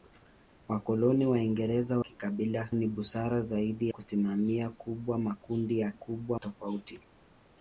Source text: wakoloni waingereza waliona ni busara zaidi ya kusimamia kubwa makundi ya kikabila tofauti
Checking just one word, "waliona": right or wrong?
wrong